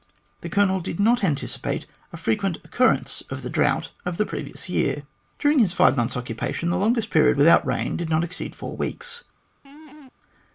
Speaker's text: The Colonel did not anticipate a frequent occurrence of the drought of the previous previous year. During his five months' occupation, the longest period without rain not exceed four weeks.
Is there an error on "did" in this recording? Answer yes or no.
no